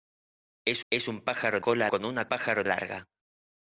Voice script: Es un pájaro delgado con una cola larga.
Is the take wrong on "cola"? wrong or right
wrong